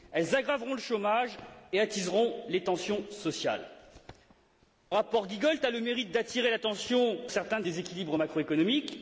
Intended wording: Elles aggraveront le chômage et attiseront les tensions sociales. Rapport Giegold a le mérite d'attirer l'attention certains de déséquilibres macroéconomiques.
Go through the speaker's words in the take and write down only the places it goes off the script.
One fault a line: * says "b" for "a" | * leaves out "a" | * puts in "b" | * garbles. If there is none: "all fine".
all fine